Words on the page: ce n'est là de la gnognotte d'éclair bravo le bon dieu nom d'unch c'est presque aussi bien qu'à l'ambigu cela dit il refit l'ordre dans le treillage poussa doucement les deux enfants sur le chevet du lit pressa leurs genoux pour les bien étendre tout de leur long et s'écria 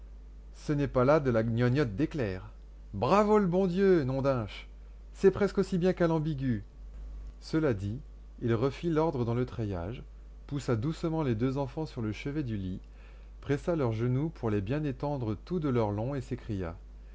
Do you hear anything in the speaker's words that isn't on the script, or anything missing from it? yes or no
yes